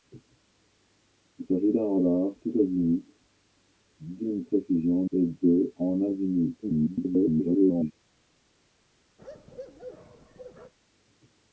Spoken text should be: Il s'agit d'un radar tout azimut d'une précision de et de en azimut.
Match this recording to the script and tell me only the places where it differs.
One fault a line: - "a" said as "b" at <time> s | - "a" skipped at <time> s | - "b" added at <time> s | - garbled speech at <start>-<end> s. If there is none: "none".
- "de" skipped at 5.0 s
- garbled speech at 6.6-7.9 s